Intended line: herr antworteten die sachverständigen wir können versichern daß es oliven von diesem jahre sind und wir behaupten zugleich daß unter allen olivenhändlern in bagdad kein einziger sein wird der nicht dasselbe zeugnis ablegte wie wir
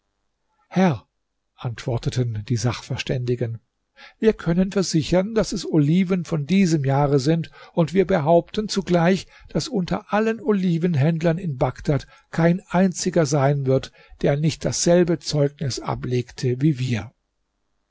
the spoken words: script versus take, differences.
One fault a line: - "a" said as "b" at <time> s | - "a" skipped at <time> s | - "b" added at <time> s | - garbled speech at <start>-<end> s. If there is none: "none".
none